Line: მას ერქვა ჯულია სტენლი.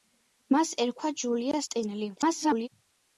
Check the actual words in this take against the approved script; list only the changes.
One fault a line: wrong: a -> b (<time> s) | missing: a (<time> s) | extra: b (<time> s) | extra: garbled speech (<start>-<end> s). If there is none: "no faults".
extra: garbled speech (2.2-2.7 s)